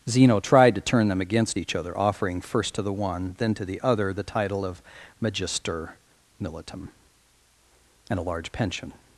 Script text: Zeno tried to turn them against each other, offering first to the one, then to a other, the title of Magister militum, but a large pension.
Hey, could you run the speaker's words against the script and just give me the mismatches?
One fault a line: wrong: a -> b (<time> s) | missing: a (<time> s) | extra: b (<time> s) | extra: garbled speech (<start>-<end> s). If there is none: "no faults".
wrong: a -> the (3.6 s)
wrong: but -> and (8.1 s)